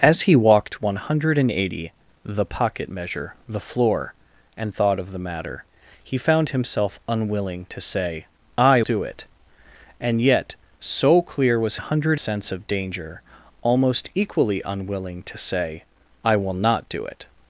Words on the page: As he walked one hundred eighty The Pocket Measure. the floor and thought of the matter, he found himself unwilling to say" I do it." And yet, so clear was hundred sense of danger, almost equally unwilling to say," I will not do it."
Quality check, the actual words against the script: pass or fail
pass